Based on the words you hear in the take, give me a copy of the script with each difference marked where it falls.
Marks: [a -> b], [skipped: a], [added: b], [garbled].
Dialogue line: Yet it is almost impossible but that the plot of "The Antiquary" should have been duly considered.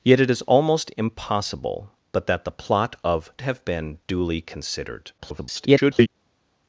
Yet it is almost impossible but that the plot of [skipped: "The Antiquary" should] have been duly considered. [garbled]